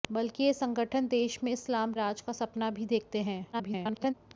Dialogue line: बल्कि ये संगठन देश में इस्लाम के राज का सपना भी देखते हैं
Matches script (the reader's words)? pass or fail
fail